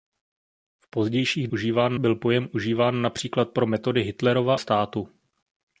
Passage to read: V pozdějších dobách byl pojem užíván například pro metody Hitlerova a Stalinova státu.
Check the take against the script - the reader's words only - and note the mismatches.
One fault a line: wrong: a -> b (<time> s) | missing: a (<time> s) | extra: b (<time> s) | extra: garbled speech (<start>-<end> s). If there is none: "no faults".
wrong: dobách -> užíván (1.5 s)
missing: a Stalinova (4.5 s)